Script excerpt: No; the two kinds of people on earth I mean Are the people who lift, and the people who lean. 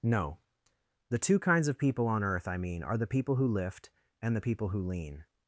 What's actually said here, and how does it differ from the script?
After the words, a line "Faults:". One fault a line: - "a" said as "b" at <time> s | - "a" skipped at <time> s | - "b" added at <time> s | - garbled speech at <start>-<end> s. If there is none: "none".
No; the two kinds of people on earth I mean Are the people who lift, and the people who lean.
Faults:
none